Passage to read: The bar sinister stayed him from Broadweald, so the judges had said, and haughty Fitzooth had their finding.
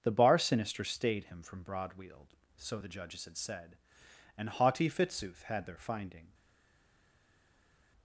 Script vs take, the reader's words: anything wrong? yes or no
no